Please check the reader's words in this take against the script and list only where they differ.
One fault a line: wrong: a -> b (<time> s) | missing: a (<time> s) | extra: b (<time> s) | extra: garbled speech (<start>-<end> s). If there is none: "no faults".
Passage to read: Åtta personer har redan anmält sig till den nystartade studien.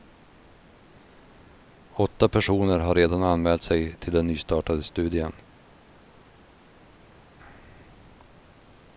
no faults